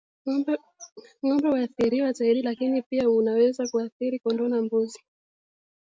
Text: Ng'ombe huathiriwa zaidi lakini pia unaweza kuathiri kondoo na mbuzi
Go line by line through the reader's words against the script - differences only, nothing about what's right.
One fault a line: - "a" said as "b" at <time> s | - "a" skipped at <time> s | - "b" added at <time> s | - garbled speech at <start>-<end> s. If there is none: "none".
none